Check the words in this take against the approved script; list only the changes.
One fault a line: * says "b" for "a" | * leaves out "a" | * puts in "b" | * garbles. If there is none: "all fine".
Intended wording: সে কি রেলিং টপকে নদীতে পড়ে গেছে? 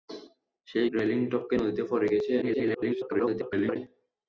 * leaves out "কি"
* garbles